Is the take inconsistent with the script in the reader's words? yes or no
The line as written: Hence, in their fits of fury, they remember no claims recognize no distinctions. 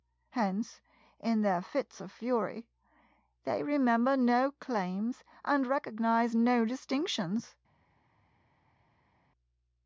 yes